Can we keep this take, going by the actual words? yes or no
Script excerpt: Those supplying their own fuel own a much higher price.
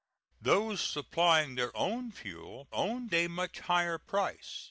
yes